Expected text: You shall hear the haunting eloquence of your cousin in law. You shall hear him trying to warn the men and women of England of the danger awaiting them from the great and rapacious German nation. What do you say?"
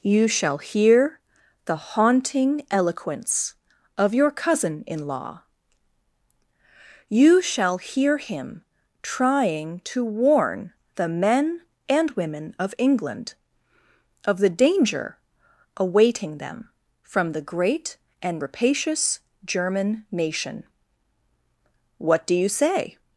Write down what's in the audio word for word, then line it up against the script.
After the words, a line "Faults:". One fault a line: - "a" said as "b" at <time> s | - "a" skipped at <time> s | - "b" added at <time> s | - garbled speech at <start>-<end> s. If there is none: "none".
You shall hear the haunting eloquence of your cousin in law. You shall hear him trying to warn the men and women of England of the danger awaiting them from the great and rapacious German nation. What do you say?"
Faults:
none